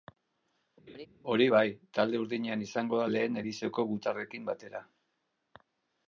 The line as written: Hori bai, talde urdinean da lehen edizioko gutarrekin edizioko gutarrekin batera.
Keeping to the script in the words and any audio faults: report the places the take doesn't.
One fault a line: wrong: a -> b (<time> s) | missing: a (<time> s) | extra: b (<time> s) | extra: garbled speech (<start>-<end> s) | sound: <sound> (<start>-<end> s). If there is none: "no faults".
sound: laugh (0.9-1.1 s)
extra: izango (2.7 s)
missing: edizioko gutarrekin (4.5 s)